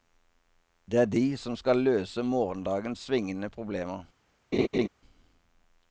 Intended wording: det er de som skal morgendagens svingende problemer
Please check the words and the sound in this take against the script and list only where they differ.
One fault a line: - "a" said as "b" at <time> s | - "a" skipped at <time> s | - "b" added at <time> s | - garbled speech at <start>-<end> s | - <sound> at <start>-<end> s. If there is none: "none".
- "løse" added at 1.9 s
- laugh at 4.5-4.9 s